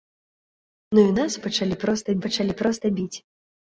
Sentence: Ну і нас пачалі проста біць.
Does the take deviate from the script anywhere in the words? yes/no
yes